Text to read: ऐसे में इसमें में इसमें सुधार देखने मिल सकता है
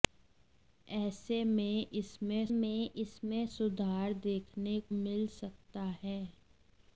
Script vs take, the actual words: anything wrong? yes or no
no